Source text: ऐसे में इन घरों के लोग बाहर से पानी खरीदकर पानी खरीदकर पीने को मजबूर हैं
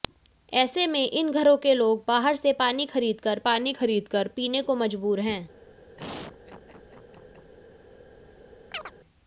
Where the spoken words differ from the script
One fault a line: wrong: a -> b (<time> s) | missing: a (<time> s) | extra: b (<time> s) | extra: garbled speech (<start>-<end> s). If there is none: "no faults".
no faults